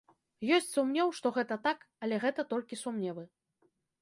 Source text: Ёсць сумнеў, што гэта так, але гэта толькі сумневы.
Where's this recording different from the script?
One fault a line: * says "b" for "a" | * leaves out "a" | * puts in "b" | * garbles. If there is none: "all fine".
all fine